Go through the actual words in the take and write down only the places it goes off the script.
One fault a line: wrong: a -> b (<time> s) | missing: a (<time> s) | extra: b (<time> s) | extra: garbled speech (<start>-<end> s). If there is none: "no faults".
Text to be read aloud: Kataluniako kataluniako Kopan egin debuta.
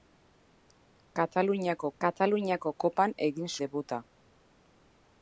no faults